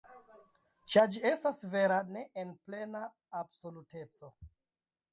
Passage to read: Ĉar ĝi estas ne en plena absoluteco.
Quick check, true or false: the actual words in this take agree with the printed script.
false